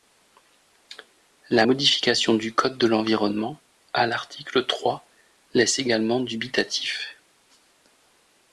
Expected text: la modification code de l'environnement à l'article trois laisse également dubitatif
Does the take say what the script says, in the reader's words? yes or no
no